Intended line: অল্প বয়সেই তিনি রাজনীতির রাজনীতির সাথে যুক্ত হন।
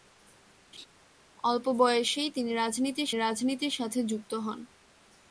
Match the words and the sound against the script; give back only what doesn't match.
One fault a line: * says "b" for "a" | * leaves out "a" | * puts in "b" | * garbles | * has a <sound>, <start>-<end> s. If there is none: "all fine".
* has a laugh, 0.7-0.9 s